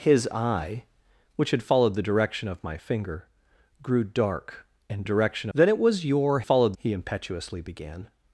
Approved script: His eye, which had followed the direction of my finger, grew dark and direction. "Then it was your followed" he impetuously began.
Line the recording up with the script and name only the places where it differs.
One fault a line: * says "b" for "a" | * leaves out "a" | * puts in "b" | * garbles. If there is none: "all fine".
all fine